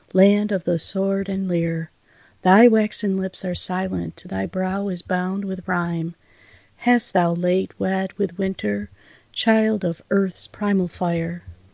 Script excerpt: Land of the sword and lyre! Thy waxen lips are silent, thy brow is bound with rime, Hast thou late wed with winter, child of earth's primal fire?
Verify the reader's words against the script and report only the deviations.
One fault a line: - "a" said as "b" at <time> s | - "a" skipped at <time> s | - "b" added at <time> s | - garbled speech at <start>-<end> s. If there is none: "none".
none